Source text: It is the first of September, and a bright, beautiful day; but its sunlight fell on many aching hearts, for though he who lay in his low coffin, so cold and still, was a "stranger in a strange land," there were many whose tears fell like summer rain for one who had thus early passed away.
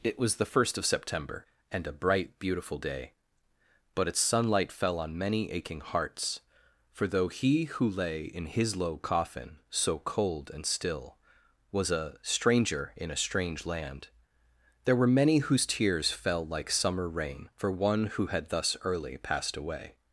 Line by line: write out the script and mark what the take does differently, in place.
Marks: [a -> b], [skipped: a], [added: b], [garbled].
It [is -> was] the first of September, and a bright, beautiful day; but its sunlight fell on many aching hearts, for though he who lay in his low coffin, so cold and still, was a "stranger in a strange land," there were many whose tears fell like summer rain for one who had thus early passed away.